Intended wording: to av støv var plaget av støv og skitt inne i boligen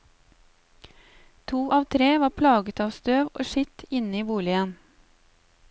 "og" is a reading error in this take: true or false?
false